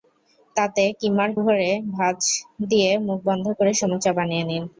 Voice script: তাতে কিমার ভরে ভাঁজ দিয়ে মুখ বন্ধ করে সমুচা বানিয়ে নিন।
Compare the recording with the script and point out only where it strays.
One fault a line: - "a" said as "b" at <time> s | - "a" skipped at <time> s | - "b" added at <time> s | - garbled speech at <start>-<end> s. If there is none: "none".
none